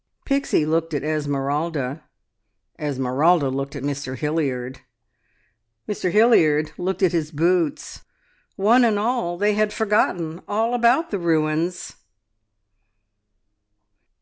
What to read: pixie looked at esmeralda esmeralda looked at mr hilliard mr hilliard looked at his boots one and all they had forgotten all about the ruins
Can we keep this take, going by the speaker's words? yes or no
yes